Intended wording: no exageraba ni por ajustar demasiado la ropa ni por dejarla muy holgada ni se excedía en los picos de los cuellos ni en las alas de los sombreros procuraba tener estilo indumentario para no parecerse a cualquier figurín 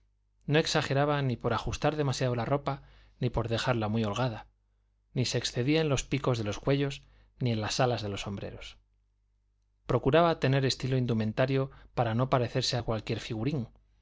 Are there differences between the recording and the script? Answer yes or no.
no